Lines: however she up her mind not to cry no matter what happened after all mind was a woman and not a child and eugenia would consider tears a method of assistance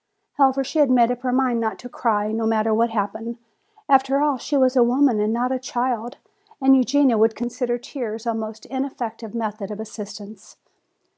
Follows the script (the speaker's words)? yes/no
no